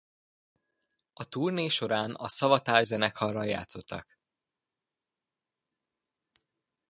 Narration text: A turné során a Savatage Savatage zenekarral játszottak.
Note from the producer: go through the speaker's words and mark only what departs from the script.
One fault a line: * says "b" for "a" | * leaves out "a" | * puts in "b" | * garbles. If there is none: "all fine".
* leaves out "Savatage"